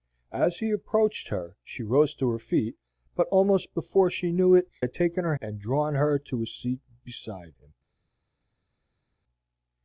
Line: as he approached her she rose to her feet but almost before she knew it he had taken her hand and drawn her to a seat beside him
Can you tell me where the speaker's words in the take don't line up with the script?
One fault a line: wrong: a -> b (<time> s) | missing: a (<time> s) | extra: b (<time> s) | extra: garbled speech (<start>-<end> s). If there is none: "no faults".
missing: he (4.7 s)
missing: hand (5.3 s)